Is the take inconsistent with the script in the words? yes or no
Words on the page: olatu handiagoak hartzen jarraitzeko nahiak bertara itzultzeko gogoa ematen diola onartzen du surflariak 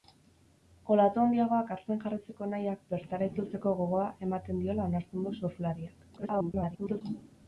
yes